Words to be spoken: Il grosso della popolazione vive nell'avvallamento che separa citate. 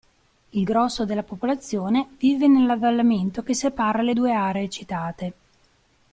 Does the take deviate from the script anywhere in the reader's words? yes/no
yes